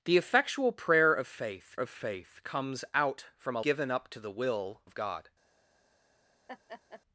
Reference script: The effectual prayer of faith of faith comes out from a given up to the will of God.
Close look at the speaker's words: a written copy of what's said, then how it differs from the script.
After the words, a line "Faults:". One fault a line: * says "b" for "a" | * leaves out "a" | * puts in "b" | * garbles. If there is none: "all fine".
The effectual prayer of faith of faith comes out from a given up to the will of God.
Faults:
all fine